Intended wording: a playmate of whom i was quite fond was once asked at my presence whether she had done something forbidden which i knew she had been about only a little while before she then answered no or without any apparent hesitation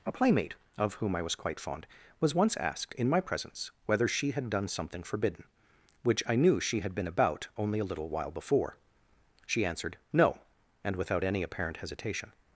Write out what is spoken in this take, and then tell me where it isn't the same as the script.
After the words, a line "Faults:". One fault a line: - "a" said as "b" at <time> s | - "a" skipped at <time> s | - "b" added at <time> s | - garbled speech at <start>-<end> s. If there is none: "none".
a playmate of whom i was quite fond was once asked in my presence whether she had done something forbidden which i knew she had been about only a little while before she answered no and without any apparent hesitation
Faults:
- "at" said as "in" at 3.0 s
- "then" skipped at 9.7 s
- "or" said as "and" at 10.8 s